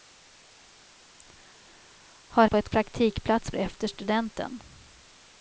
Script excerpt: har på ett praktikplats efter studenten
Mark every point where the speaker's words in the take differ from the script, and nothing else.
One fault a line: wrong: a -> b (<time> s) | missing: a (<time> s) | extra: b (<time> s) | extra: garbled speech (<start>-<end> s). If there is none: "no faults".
no faults